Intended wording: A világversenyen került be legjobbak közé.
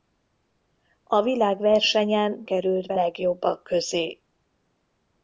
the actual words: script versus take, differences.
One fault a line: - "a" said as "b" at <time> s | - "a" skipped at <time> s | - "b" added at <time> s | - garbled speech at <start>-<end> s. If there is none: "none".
none